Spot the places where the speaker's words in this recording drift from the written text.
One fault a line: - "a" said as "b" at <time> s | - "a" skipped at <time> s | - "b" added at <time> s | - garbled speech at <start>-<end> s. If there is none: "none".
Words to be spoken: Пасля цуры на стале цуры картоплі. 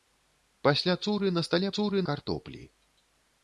none